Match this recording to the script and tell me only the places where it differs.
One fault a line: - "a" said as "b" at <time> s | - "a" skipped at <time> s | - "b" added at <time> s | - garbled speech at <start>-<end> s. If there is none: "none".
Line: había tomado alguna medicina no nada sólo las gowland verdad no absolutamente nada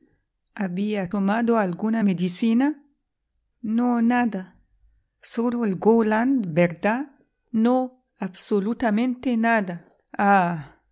- "las" said as "el" at 5.6 s